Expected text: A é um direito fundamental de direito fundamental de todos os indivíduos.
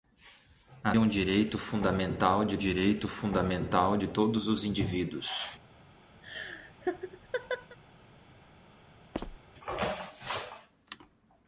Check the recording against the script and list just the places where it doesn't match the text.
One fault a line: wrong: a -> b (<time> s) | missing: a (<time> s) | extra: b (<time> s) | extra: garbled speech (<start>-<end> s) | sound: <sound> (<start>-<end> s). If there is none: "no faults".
sound: laugh (6.2-7.8 s)
sound: squeak (9.1-9.4 s)